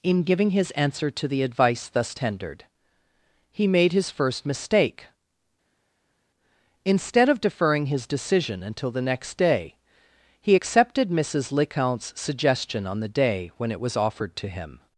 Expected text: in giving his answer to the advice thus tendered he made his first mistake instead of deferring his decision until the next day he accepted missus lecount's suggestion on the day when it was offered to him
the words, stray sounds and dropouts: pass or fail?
pass